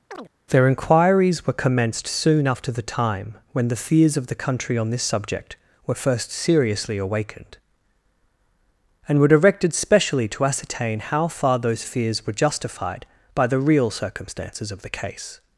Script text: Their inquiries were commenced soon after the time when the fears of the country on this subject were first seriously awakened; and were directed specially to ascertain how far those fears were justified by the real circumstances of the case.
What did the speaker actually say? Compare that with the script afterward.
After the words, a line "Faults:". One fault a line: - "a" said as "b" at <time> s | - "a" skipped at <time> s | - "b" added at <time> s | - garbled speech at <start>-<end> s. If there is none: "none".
Their inquiries were commenced soon after the time when the fears of the country on this subject were first seriously awakened; and were directed specially to ascertain how far those fears were justified by the real circumstances of the case.
Faults:
none